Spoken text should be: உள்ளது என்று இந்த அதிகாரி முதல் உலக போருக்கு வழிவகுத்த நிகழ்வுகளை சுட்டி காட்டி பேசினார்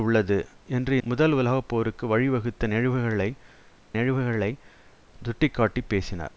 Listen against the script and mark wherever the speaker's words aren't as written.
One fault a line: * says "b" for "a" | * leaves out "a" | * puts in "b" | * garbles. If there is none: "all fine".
* leaves out "இந்த அதிகாரி"
* puts in "நிகழ்வுகளை"